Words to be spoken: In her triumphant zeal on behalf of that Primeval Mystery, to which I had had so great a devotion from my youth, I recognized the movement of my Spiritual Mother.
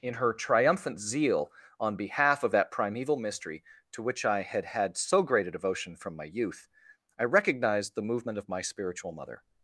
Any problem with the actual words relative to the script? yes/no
no